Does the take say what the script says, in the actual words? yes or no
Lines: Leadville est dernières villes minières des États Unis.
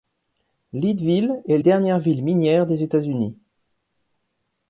yes